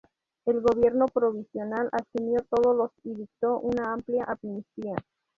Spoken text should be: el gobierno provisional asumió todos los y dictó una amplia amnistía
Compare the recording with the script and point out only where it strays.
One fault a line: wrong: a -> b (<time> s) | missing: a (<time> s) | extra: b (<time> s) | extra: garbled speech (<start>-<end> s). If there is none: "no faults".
no faults